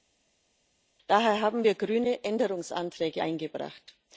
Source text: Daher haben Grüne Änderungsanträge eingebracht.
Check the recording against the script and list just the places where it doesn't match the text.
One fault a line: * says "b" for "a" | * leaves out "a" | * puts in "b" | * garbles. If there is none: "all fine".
* puts in "wir"